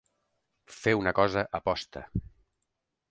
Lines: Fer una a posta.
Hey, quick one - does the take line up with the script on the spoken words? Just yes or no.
no